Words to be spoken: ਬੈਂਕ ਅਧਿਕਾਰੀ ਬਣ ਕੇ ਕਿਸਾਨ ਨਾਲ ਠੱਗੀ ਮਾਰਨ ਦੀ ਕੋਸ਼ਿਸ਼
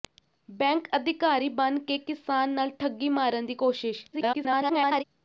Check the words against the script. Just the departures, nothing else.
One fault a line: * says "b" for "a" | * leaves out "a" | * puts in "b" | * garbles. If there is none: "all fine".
* garbles